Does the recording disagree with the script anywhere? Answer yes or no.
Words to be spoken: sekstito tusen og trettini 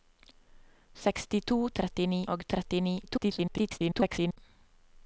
yes